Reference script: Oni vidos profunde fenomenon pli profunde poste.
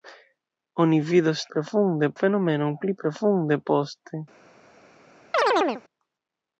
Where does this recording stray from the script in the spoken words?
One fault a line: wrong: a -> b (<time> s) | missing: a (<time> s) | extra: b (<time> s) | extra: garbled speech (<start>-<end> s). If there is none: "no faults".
no faults